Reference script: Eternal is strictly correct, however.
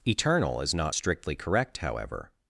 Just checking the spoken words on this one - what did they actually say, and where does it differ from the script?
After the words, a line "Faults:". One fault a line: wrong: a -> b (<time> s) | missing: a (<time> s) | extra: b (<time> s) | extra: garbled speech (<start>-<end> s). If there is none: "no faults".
Eternal is not strictly correct, however.
Faults:
extra: not (0.7 s)